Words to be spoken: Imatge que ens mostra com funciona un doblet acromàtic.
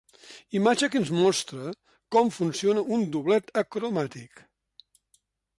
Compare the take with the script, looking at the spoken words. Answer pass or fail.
pass